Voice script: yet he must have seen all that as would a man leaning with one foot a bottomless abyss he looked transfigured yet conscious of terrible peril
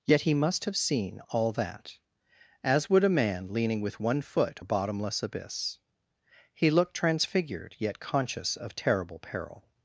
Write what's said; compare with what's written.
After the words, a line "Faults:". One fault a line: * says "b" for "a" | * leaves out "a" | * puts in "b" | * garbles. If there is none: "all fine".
yet he must have seen all that as would a man leaning with one foot a bottomless abyss he looked transfigured yet conscious of terrible peril
Faults:
all fine